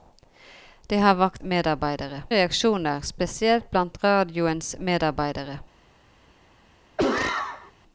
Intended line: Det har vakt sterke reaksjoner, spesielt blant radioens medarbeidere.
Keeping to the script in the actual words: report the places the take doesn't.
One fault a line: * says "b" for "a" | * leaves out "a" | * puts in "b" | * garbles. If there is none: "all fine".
* says "medarbeidere" for "sterke"